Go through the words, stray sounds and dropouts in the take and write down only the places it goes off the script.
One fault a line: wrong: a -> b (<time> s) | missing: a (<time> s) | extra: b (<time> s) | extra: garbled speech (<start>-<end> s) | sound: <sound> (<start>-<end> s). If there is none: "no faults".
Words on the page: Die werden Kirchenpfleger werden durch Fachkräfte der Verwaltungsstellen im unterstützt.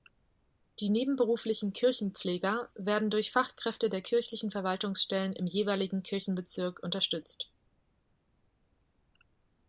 wrong: werden -> nebenberuflichen (0.9 s)
extra: kirchlichen (4.0 s)
extra: jeweiligen Kirchenbezirk (5.5 s)